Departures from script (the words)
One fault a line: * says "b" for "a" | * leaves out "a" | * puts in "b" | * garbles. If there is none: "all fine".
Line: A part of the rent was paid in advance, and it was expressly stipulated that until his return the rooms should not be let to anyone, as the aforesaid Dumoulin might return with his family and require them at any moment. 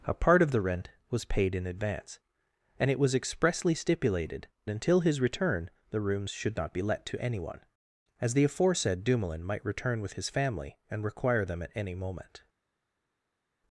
* leaves out "that"